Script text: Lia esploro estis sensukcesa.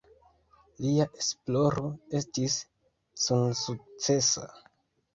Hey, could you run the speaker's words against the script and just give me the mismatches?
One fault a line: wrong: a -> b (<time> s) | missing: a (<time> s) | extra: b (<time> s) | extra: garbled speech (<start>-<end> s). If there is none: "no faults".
no faults